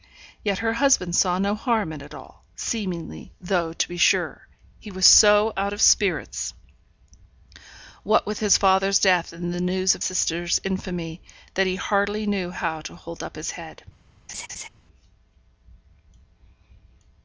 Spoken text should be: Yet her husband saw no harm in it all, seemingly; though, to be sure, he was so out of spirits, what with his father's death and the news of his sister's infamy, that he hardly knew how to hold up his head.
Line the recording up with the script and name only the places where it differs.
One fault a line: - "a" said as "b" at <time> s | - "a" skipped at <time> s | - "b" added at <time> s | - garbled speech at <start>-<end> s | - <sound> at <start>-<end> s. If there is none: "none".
- "his" skipped at 10.0 s
- laugh at 14.3-14.7 s